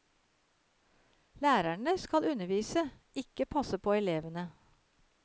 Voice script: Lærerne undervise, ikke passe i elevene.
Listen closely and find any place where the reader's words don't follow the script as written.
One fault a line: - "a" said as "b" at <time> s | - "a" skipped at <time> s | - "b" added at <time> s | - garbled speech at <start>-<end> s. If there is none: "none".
- "skal" added at 2.0 s
- "i" said as "på" at 3.8 s